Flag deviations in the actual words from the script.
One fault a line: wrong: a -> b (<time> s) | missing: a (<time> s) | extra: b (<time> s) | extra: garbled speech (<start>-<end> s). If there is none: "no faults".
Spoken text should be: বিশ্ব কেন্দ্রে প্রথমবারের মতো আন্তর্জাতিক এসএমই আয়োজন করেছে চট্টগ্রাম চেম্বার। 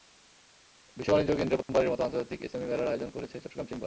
extra: বাণিজ্য (1.1 s)
extra: মেলার (2.7 s)